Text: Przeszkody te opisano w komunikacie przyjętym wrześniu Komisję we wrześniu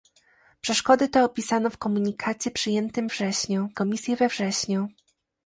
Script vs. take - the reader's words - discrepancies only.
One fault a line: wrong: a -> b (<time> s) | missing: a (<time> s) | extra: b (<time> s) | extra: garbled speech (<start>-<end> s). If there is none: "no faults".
no faults